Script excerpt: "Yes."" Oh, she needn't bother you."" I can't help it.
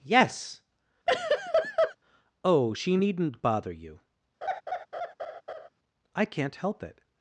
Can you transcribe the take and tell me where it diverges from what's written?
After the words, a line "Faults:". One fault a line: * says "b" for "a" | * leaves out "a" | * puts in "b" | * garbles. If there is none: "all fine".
"Yes."" Oh, she needn't bother you."" I can't help it.
Faults:
all fine